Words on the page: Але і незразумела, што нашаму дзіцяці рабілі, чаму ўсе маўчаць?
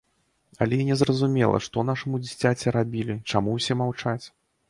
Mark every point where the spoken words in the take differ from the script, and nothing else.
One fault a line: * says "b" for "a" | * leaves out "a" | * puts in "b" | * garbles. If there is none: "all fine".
all fine